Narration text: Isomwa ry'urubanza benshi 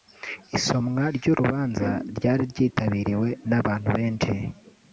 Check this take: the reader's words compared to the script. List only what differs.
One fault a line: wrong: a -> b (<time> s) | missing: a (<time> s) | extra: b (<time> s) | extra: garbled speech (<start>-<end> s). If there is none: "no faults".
extra: ryari ryitabiriwe n'abantu (2.2 s)